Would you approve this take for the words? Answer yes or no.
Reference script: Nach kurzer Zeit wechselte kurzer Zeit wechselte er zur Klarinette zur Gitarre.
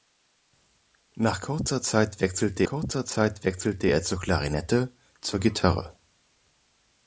yes